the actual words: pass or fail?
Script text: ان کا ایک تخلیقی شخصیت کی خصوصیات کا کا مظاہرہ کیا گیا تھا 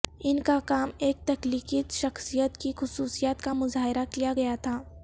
fail